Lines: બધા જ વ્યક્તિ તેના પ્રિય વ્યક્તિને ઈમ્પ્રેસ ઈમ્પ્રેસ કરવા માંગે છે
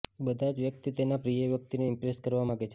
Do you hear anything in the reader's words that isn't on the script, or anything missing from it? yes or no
yes